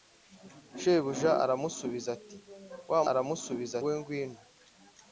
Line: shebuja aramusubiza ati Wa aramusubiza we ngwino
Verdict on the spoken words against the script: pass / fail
pass